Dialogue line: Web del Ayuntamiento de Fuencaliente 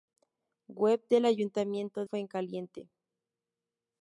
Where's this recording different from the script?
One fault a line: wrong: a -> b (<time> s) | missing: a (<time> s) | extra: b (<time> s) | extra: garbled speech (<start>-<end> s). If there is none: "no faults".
missing: de (2.0 s)